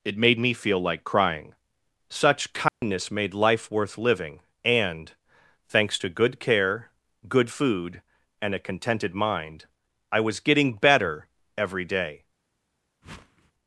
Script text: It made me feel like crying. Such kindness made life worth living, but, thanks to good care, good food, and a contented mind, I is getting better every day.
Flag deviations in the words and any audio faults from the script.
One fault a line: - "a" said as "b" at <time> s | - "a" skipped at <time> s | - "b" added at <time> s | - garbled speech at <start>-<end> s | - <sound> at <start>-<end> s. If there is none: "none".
- dropout at 2.7-2.8 s
- "but" said as "and" at 4.6 s
- "is" said as "was" at 10.2 s
- whoosh at 13.0-13.5 s